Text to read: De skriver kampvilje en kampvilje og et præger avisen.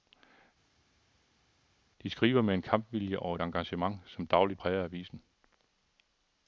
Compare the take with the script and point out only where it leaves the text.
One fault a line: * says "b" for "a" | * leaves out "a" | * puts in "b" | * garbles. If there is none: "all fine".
* says "med" for "kampvilje"
* puts in "engagement som dagligt"